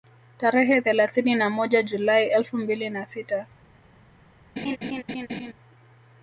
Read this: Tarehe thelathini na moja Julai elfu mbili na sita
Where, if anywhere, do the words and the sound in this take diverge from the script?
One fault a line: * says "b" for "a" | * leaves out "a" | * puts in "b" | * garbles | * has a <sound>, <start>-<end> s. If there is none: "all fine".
* has a laugh, 4.6-5.5 s